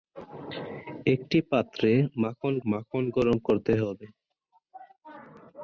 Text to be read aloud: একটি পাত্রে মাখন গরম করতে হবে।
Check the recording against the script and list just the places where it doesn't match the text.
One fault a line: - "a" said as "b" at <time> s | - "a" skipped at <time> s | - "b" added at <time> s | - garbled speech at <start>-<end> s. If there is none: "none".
- "মাখন" added at 2.7 s